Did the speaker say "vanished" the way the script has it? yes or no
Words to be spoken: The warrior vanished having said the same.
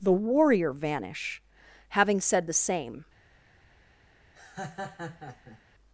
no